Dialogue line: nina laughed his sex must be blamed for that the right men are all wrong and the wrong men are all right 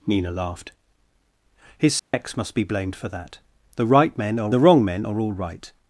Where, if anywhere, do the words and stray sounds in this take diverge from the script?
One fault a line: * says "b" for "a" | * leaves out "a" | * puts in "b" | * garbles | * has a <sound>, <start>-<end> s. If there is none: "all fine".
* has a dropout, 2.0-2.1 s
* leaves out "all wrong and"